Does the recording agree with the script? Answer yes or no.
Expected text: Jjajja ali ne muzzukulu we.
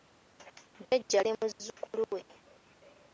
no